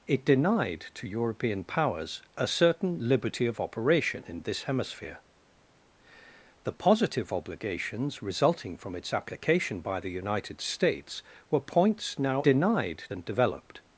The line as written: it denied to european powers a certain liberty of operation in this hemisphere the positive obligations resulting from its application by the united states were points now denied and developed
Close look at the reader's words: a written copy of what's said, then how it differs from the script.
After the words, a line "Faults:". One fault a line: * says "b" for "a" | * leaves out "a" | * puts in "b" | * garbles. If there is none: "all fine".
it denied to european powers a certain liberty of operation in this hemisphere the positive obligations resulting from its application by the united states were points now denied and developed
Faults:
all fine